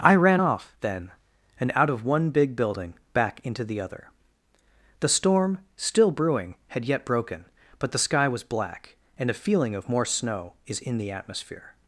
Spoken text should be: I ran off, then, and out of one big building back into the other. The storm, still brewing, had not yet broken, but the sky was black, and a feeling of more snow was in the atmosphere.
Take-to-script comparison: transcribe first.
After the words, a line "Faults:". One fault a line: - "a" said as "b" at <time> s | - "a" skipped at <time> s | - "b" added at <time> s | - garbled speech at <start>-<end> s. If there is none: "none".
I ran off, then, and out of one big building back into the other. The storm, still brewing, had yet broken, but the sky was black, and a feeling of more snow is in the atmosphere.
Faults:
- "not" skipped at 6.8 s
- "was" said as "is" at 10.7 s